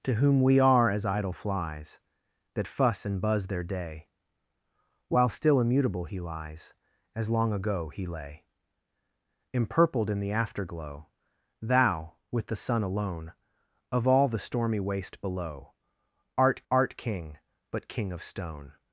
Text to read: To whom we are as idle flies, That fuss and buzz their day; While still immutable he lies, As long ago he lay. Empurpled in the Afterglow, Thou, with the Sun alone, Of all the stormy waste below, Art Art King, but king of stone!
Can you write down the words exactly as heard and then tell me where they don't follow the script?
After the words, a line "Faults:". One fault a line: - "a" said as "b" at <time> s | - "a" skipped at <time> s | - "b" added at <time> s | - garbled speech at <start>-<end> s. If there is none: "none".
To whom we are as idle flies, That fuss and buzz their day; While still immutable he lies, As long ago he lay. Empurpled in the Afterglow, Thou, with the Sun alone, Of all the stormy waste below, Art Art King, but king of stone!
Faults:
none